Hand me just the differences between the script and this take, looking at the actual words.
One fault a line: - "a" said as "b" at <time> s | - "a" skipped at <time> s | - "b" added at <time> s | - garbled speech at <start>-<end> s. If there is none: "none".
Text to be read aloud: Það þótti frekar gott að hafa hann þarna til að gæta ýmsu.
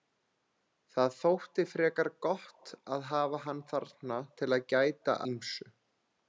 none